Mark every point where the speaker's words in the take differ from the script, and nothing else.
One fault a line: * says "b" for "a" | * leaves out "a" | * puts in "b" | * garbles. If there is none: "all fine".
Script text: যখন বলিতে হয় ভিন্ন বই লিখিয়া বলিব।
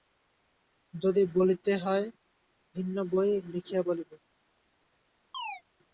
* says "যদি" for "যখন"